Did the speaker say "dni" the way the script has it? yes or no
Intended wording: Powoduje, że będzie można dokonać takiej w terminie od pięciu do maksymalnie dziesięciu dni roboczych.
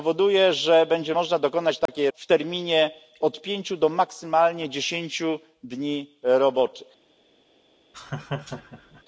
yes